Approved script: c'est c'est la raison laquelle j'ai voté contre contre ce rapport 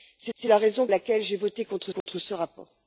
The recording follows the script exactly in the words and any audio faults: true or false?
false